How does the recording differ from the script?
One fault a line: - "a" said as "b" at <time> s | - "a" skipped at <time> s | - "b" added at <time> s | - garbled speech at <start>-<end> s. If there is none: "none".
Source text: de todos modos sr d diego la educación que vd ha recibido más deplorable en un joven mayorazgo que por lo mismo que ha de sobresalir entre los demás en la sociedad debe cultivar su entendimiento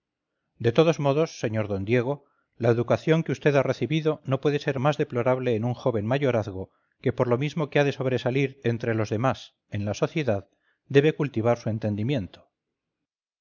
- "no puede ser" added at 4.3 s